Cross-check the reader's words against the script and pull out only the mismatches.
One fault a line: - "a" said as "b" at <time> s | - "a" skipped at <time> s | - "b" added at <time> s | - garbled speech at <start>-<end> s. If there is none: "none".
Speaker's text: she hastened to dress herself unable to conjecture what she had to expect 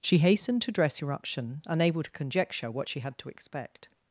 - "herself" said as "eruption" at 1.0 s